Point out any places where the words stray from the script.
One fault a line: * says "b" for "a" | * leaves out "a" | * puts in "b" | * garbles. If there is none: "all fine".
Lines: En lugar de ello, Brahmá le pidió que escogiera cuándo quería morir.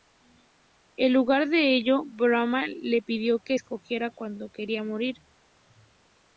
all fine